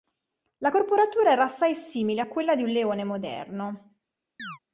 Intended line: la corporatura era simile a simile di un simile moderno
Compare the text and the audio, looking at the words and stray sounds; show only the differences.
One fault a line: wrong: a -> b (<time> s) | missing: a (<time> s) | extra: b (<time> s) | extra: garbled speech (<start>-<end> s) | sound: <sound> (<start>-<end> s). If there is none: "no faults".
extra: assai (1.4 s)
wrong: simile -> quella (2.3 s)
wrong: simile -> leone (2.7 s)
sound: chirp (4.4-4.6 s)